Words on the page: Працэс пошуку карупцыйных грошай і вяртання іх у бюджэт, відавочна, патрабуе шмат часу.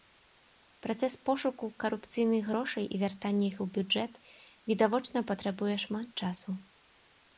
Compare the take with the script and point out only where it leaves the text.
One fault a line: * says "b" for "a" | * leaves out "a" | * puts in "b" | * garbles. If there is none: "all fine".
all fine